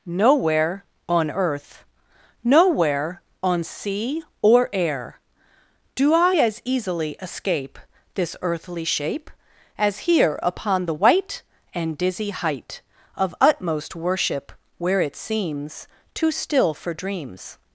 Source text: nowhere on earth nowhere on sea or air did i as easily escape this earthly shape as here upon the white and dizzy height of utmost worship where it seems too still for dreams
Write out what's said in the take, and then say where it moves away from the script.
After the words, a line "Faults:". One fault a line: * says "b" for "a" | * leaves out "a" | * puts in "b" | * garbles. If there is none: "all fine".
nowhere on earth nowhere on sea or air do i as easily escape this earthly shape as here upon the white and dizzy height of utmost worship where it seems too still for dreams
Faults:
* says "do" for "did"